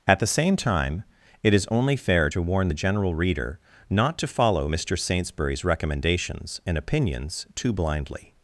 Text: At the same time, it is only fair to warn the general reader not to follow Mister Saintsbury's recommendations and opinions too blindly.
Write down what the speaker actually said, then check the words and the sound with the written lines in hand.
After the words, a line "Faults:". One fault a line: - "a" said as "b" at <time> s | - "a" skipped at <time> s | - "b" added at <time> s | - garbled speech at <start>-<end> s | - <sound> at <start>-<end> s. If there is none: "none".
At the same time, it is only fair to warn the general reader not to follow Mister Saintsbury's recommendations and opinions too blindly.
Faults:
none